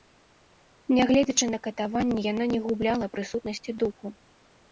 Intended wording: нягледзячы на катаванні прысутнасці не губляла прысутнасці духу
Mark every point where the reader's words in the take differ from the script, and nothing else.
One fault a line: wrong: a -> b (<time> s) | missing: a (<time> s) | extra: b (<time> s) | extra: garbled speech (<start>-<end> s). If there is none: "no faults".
wrong: прысутнасці -> яна (2.3 s)